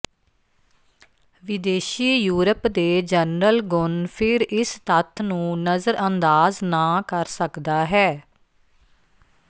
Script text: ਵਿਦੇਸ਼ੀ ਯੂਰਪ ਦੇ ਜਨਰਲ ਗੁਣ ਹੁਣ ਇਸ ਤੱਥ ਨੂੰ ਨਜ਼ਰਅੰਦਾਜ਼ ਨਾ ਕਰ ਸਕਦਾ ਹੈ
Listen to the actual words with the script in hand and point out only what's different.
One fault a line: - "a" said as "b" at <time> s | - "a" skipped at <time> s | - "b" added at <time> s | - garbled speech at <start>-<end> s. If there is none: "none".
- "ਹੁਣ" said as "ਫਿਰ" at 4.2 s